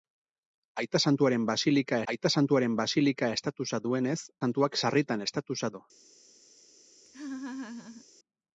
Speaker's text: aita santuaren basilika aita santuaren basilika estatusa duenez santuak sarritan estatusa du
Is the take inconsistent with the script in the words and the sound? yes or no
yes